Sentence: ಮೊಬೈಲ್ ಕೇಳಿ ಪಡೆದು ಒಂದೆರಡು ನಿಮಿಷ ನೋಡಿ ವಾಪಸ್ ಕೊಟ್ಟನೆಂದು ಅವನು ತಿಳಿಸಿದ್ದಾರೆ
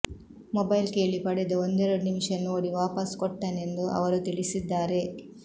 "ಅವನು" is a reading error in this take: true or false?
true